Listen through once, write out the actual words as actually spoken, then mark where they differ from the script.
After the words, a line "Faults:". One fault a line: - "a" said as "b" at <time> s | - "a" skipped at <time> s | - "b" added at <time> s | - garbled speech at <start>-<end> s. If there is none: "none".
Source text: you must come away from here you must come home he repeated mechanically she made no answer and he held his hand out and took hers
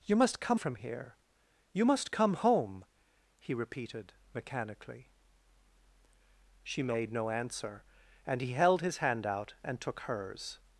you must come from here you must come home he repeated mechanically she made no answer and he held his hand out and took hers
Faults:
- "away" skipped at 0.6 s